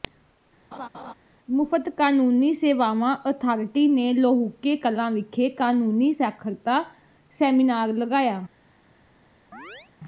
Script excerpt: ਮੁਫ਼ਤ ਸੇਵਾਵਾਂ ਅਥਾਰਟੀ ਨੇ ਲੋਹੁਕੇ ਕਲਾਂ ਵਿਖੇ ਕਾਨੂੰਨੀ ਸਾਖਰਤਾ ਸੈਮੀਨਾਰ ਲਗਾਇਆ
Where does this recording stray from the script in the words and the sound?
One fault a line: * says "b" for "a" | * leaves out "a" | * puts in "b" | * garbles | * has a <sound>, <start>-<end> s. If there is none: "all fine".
* has a laugh, 0.7-1.1 s
* puts in "ਕਾਨੂੰਨੀ"
* has a chirp, 9.5-9.9 s